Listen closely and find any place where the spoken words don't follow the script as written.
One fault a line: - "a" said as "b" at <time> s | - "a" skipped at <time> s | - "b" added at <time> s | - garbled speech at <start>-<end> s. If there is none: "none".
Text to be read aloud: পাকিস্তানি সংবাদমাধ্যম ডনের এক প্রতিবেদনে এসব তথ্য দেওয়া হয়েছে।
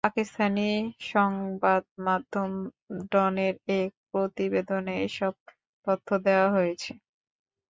none